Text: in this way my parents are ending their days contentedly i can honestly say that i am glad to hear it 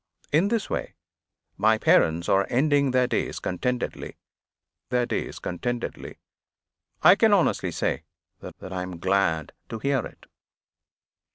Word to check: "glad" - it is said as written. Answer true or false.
true